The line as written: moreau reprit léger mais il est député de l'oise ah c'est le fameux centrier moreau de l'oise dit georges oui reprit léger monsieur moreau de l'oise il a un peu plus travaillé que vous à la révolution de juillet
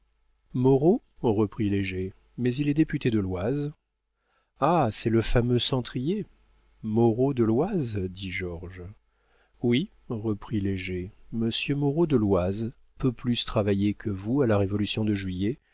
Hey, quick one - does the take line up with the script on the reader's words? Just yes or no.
no